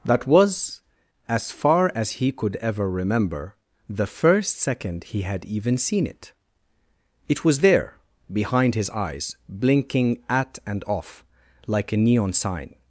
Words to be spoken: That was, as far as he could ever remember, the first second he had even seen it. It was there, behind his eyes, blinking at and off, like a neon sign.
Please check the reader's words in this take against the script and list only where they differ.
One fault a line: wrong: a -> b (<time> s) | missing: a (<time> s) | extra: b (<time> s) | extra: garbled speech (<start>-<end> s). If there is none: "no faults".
no faults